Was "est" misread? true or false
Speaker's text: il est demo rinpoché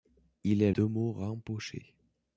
false